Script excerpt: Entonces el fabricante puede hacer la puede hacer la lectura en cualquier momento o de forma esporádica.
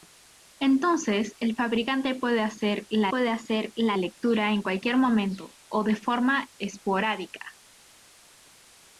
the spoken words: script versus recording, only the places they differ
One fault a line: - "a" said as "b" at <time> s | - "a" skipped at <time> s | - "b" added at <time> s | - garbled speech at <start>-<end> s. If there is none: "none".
none